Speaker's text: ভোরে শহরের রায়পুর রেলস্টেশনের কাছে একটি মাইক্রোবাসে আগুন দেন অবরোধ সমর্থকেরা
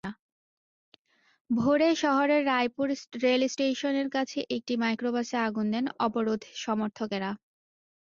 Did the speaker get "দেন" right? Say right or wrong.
right